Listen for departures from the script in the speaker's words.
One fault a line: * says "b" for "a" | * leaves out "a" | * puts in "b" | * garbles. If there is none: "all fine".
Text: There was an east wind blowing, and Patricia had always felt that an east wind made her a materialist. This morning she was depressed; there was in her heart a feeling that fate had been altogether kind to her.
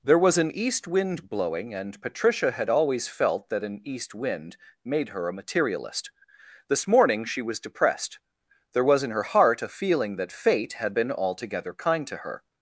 all fine